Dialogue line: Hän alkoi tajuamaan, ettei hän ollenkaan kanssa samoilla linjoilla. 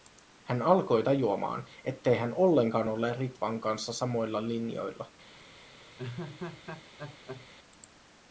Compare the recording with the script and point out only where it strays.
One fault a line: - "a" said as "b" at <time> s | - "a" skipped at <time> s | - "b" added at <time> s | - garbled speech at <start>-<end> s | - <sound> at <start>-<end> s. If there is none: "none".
- "ole Ritvan" added at 2.9 s
- laugh at 6.0-7.5 s